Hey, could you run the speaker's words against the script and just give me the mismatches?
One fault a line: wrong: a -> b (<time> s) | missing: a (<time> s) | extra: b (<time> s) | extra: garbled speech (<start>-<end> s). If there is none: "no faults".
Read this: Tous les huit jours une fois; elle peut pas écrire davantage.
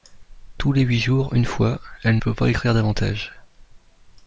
no faults